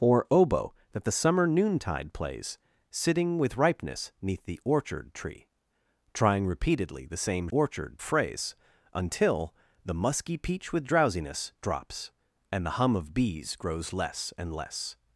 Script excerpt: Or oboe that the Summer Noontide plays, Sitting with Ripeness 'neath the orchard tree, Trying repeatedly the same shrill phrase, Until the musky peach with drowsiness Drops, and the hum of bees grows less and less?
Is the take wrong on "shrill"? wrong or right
wrong